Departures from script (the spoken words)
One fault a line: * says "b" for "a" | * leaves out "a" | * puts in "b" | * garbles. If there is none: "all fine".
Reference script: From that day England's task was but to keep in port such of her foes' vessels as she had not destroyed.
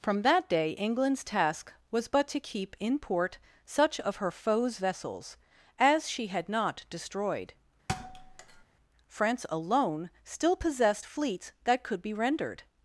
* puts in "France alone still possessed fleets that could be rendered"